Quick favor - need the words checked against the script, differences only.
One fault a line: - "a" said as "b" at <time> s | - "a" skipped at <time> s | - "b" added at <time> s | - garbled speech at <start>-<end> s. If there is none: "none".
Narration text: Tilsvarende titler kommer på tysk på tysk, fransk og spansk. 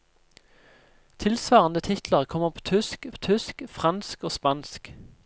none